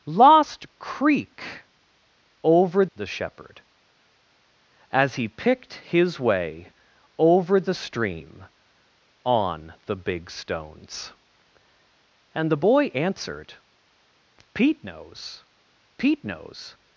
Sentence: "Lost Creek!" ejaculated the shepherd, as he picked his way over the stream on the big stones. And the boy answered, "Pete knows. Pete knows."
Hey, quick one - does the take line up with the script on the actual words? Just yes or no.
no